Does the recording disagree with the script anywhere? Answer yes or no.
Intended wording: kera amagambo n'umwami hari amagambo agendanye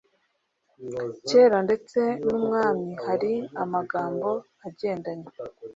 yes